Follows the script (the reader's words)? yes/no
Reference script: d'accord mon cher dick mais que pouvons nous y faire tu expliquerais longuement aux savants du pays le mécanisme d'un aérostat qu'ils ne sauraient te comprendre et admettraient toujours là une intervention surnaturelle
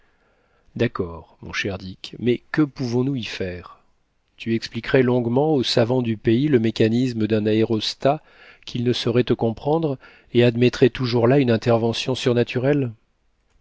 yes